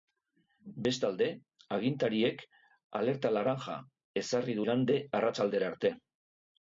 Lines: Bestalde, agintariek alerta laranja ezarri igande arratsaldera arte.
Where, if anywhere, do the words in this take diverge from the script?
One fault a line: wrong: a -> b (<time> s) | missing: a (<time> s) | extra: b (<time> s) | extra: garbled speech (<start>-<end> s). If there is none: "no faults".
no faults